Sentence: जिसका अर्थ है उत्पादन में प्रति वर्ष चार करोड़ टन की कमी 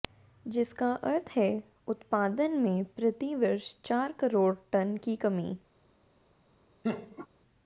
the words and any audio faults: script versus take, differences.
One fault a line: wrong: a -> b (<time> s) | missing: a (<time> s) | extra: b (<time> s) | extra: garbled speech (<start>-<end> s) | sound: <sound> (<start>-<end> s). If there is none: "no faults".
sound: laugh (6.8-7.3 s)